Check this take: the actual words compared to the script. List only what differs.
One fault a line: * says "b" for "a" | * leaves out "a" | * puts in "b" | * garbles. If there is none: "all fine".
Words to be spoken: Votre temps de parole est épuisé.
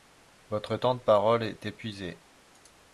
all fine